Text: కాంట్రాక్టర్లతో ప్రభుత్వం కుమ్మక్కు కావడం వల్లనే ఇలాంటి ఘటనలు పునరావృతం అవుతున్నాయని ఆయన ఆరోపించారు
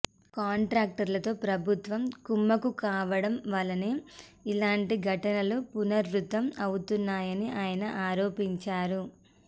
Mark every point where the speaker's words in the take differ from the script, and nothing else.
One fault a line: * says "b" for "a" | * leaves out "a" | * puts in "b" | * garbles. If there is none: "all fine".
all fine